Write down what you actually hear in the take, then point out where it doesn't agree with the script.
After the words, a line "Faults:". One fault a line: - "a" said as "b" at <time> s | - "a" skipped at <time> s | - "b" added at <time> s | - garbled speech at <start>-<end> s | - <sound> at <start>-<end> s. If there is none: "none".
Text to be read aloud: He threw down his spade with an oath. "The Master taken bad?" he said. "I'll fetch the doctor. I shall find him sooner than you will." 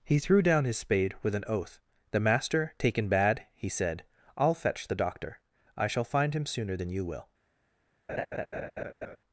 He threw down his spade with an oath. "The Master taken bad?" he said. "I'll fetch the doctor. I shall find him sooner than you will."
Faults:
- laugh at 8.1-9.2 s